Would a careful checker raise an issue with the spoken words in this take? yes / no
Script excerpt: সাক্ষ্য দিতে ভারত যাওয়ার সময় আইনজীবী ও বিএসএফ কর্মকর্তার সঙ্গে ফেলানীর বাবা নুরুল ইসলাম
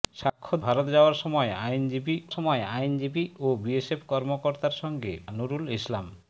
yes